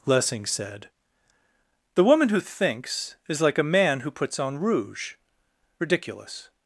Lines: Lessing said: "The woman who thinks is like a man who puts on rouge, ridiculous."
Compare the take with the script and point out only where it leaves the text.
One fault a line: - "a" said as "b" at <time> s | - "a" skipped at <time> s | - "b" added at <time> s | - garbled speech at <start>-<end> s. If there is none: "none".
none